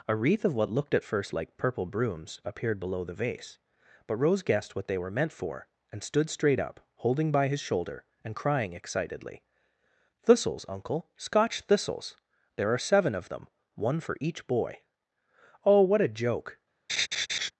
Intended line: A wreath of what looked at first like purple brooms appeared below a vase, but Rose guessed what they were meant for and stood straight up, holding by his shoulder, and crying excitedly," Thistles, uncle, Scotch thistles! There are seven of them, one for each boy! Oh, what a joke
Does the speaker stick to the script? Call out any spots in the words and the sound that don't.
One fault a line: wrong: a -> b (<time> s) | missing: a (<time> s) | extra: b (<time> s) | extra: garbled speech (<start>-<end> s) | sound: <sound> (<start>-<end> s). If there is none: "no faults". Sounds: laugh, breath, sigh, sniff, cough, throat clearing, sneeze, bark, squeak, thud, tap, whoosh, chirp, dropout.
wrong: a -> the (3.0 s)
sound: laugh (16.9-17.5 s)